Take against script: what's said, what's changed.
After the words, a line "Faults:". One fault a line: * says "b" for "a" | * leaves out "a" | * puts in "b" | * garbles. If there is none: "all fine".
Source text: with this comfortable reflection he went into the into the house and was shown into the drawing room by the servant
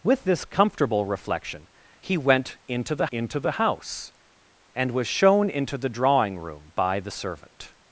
with this comfortable reflection he went into the into the house and was shown into the drawing room by the servant
Faults:
all fine